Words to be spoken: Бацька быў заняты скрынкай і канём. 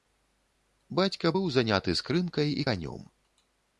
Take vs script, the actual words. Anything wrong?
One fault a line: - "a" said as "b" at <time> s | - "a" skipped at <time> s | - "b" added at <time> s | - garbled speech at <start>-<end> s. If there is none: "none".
none